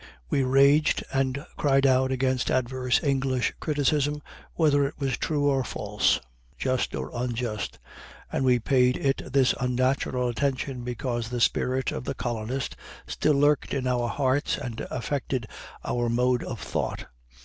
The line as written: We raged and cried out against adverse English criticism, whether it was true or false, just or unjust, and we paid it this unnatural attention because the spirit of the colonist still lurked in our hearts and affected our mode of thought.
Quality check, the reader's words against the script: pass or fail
pass